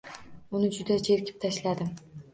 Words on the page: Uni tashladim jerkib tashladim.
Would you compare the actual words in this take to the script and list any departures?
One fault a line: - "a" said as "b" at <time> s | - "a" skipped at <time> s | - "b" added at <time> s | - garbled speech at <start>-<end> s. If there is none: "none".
- "tashladim" said as "juda" at 0.8 s